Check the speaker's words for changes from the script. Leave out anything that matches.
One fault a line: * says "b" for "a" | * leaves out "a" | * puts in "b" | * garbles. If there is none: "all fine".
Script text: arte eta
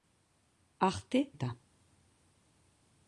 all fine